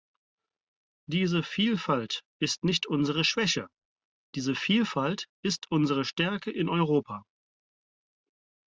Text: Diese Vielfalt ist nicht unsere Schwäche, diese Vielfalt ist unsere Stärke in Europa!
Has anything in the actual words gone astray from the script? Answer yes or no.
no